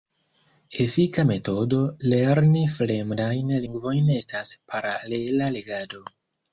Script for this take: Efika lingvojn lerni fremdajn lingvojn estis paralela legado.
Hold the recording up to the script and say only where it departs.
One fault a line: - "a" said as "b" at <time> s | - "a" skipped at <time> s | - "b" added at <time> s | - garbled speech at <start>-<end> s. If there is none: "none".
- "lingvojn" said as "metodo" at 1.3 s
- "estis" said as "estas" at 4.2 s